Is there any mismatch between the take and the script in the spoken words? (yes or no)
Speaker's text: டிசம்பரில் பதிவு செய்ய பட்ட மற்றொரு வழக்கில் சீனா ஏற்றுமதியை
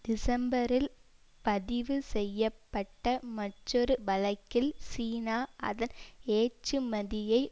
yes